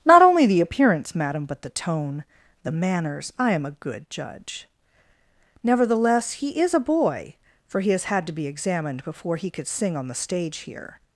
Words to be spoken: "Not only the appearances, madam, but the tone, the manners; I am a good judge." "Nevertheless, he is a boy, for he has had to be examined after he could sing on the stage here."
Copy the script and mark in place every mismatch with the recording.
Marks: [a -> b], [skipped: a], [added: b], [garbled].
"Not only the [appearances, -> appearance] madam, but the tone, the manners; I am a good judge." "Nevertheless, he is a boy, for he has had to be examined [after -> before] he could sing on the stage here."